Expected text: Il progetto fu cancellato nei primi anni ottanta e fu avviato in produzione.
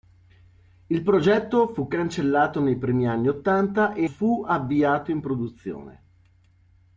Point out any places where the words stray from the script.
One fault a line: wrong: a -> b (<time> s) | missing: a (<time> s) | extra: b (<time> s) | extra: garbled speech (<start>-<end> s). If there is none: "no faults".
no faults